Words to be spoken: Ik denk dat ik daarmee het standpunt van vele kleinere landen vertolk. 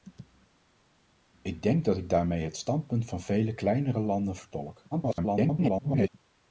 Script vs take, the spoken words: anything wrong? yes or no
yes